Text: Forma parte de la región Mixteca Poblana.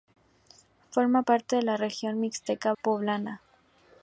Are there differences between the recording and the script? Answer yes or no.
no